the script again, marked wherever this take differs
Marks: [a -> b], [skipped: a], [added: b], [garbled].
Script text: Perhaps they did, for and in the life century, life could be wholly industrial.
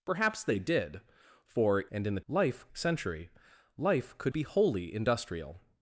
Perhaps they did, for and in the life century, life could be wholly industrial.